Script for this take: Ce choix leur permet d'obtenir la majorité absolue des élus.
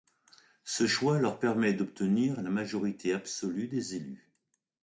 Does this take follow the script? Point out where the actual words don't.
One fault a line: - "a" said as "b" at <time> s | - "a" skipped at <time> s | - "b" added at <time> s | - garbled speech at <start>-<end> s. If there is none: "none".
none